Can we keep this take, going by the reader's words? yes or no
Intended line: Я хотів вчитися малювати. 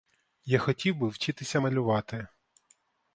no